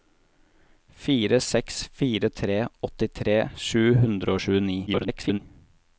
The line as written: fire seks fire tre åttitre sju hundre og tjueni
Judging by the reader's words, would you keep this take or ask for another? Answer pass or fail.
fail